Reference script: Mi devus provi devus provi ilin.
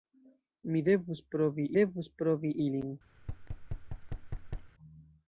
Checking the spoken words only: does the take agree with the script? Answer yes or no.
yes